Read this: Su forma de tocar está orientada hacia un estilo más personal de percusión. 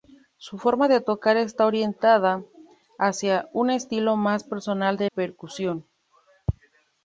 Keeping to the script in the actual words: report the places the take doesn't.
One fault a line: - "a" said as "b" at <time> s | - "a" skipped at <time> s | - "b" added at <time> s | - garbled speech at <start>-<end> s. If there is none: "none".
none